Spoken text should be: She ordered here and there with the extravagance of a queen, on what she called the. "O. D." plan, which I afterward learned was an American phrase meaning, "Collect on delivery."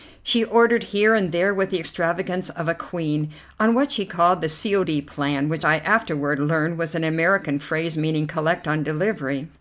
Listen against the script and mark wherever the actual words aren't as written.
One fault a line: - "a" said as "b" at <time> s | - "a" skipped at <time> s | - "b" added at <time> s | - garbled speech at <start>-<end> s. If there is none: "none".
- "C" added at 4.5 s